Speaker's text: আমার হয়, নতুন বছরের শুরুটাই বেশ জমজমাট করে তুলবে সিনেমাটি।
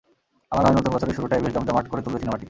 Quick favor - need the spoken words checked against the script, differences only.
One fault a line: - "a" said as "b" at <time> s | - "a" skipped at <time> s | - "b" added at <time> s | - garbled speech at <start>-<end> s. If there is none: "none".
none